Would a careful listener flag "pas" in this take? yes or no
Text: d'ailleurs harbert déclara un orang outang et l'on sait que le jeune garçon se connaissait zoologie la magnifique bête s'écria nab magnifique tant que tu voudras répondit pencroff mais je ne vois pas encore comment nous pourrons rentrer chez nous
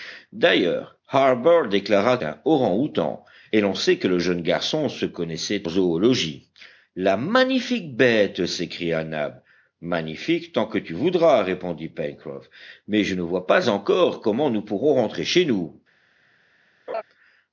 no